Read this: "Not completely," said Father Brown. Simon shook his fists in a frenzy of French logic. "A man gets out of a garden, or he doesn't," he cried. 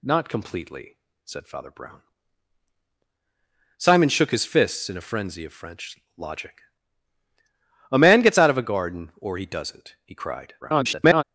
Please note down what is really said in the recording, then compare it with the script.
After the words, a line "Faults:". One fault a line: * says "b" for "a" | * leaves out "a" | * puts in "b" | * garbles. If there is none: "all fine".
"Not completely," said Father Brown. Simon shook his fists in a frenzy of French logic. "A man gets out of a garden, or he doesn't," he cried. [garbled]
Faults:
* garbles